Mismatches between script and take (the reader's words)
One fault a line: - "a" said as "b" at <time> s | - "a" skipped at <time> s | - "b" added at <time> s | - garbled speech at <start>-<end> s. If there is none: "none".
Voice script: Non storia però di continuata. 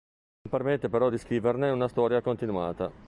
- "storia" said as "permette" at 0.5 s
- "scriverne una storia" added at 1.2 s